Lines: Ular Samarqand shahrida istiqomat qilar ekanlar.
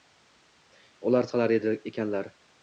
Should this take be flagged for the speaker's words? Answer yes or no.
yes